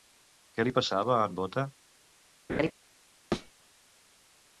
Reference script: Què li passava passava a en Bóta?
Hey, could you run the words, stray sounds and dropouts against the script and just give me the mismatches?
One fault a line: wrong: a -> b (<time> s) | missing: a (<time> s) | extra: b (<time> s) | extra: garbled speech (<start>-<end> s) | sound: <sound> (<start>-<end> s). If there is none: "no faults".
missing: passava (1.2 s)
sound: laugh (2.5-2.7 s)
sound: thud (3.3-3.5 s)